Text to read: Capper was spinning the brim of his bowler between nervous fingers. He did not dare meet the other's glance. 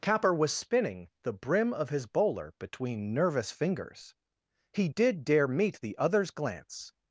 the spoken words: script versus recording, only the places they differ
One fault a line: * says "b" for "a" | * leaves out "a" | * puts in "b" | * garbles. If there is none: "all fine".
* leaves out "not"